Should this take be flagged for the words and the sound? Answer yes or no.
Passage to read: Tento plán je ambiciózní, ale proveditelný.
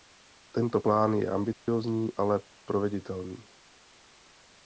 yes